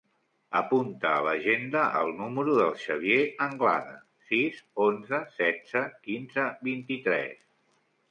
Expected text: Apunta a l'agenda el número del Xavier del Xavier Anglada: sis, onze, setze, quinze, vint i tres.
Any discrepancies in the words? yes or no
yes